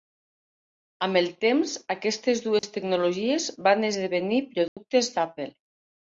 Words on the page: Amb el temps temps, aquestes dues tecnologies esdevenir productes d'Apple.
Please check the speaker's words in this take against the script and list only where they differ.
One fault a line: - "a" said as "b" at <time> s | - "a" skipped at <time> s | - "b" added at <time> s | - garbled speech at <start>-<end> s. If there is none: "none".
- "temps" skipped at 1.7 s
- "van" added at 3.7 s